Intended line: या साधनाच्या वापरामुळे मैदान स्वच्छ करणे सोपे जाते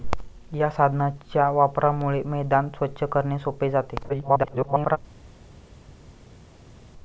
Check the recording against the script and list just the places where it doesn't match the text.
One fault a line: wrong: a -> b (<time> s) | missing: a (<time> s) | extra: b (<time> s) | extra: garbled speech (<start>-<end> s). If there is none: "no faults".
extra: garbled speech (4.1-5.0 s)